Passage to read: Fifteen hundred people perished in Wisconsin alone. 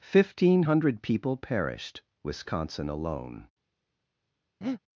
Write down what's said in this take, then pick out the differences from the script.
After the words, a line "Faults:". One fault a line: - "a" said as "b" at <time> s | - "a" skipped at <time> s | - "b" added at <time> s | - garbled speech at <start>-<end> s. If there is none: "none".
Fifteen hundred people perished Wisconsin alone.
Faults:
- "in" skipped at 2.0 s